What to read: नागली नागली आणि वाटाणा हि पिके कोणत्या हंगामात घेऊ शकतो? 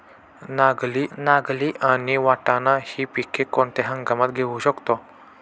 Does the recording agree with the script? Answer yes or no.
yes